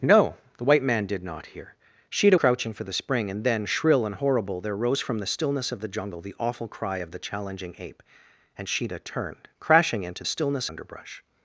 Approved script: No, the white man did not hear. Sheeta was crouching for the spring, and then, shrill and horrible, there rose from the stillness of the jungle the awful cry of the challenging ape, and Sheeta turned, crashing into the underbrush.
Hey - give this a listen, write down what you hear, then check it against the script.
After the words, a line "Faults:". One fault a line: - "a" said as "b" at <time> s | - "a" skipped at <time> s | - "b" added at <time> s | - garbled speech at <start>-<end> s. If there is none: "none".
No, the white man did not hear. Sheeta crouching for the spring, and then, shrill and horrible, there rose from the stillness of the jungle the awful cry of the challenging ape, and Sheeta turned, crashing into stillness underbrush.
Faults:
- "was" skipped at 2.4 s
- "the" said as "stillness" at 10.2 s